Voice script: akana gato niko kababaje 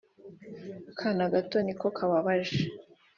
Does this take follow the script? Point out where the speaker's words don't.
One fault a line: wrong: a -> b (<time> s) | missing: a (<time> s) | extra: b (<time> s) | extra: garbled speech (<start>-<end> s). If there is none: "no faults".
no faults